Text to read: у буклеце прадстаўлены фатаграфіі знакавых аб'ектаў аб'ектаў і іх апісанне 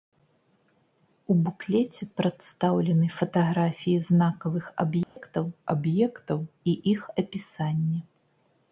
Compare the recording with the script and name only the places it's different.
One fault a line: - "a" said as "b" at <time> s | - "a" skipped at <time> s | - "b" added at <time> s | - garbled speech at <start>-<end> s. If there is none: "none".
none